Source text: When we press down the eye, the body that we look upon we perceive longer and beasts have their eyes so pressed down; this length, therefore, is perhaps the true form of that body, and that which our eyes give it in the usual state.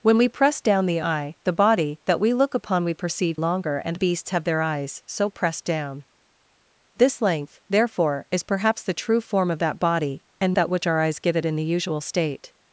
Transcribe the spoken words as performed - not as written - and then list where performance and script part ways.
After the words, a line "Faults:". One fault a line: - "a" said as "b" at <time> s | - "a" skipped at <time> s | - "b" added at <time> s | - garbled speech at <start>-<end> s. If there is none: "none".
When we press down the eye, the body that we look upon we perceive longer and beasts have their eyes so pressed down; this length, therefore, is perhaps the true form of that body, and that which our eyes give it in the usual state.
Faults:
none